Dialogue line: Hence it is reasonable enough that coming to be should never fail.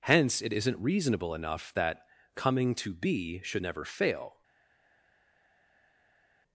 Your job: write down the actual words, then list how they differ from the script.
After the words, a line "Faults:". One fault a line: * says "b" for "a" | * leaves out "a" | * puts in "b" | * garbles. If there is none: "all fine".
Hence it isn't reasonable enough that coming to be should never fail.
Faults:
* says "isn't" for "is"